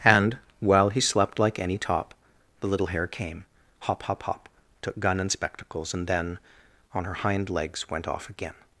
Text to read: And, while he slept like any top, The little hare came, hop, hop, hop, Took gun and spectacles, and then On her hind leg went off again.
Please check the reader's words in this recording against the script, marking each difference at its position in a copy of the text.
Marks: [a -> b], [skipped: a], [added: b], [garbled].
And, while he slept like any top, The little hare came, hop, hop, hop, Took gun and spectacles, and then On her hind [leg -> legs] went off again.